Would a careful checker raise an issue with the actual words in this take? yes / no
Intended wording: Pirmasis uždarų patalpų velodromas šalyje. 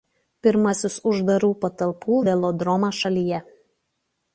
no